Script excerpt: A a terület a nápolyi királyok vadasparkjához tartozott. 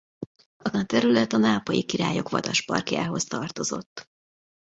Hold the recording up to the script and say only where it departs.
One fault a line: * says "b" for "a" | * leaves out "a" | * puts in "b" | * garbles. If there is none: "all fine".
all fine